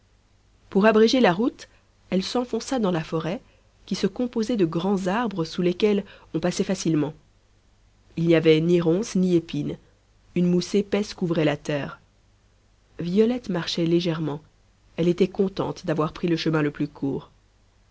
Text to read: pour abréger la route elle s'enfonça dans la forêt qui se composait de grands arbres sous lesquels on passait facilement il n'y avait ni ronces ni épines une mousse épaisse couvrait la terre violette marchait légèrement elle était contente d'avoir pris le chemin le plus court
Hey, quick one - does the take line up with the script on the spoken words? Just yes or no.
yes